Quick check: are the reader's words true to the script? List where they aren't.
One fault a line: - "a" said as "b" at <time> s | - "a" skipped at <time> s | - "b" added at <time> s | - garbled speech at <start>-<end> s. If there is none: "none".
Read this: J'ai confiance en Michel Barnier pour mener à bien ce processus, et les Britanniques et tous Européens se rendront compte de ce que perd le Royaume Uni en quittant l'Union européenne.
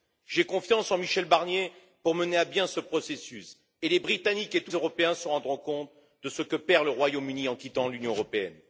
none